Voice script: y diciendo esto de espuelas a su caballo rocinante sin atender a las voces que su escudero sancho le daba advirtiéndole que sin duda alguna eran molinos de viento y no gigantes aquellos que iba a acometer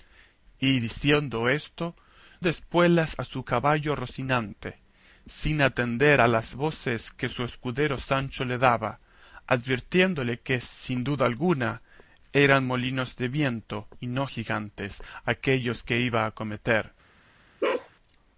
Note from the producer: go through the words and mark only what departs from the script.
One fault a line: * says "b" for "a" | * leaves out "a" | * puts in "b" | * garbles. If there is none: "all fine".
all fine